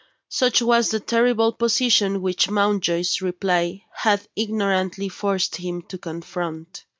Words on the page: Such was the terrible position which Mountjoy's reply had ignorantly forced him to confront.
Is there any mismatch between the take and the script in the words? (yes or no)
no